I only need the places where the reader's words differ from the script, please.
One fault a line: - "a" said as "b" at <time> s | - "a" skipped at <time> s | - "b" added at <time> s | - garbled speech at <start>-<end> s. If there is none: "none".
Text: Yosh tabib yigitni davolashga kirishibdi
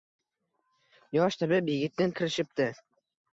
- "davolashga" skipped at 2.1 s